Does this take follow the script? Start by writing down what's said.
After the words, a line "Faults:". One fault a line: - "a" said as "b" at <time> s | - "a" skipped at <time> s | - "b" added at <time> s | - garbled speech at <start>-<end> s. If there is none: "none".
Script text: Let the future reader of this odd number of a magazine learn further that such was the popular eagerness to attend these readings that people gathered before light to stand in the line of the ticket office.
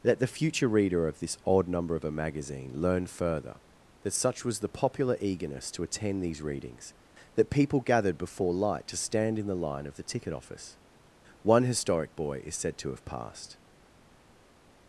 Let the future reader of this odd number of a magazine learn further that such was the popular eagerness to attend these readings that people gathered before light to stand in the line of the ticket office. One historic boy is said to have passed
Faults:
- "One historic boy is said to have passed" added at 11.4 s